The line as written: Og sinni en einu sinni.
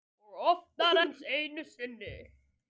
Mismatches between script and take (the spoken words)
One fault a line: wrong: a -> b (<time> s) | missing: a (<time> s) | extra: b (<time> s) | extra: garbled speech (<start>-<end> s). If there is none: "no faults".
wrong: sinni -> oftar (0.5 s)